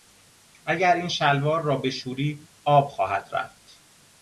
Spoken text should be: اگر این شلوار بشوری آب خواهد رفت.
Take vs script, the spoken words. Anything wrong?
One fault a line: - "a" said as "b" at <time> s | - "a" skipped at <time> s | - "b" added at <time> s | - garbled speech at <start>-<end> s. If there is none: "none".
- "را" added at 1.6 s